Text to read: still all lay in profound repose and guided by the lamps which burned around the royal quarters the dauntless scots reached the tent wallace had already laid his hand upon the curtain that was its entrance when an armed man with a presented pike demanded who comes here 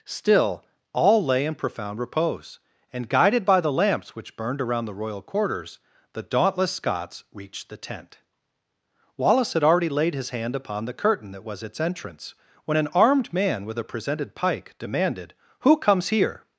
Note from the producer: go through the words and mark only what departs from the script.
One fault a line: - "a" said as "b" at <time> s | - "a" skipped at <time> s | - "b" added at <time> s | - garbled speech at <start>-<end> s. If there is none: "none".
none